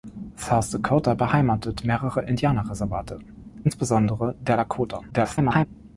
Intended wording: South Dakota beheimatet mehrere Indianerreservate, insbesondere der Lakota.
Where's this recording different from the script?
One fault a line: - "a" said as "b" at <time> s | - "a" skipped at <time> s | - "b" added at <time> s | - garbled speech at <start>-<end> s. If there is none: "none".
- garbled speech at 5.1-5.7 s